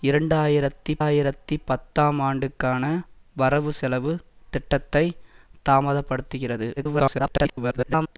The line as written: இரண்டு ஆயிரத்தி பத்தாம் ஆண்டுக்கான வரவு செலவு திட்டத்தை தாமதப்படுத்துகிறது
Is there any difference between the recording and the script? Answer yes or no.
yes